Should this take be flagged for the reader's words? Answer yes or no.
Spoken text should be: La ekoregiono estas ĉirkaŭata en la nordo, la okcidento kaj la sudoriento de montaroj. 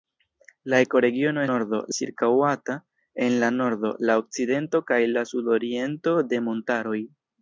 yes